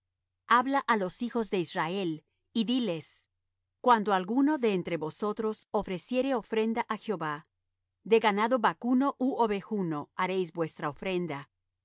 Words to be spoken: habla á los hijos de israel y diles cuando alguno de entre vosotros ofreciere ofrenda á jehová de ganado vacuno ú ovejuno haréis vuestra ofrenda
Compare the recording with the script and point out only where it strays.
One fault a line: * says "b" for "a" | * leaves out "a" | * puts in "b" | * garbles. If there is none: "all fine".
all fine